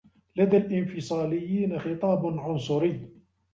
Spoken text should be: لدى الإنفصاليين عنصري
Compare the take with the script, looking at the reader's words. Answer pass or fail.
fail